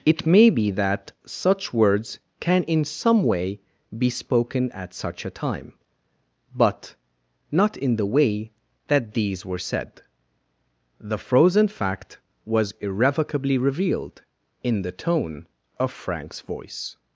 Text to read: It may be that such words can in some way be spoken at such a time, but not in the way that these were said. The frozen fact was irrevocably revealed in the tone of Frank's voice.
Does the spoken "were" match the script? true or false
true